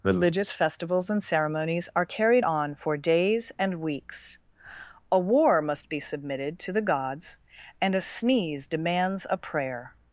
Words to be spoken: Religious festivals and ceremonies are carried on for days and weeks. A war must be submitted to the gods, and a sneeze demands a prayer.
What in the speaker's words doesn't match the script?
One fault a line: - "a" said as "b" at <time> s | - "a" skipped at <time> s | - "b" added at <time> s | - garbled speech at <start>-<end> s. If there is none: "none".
none